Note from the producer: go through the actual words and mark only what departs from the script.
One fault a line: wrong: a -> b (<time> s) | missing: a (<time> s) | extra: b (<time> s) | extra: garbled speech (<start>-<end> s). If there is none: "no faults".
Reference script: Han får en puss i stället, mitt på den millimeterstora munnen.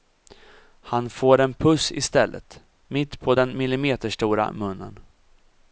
no faults